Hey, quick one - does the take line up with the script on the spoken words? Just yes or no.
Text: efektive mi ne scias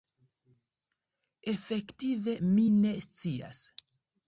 yes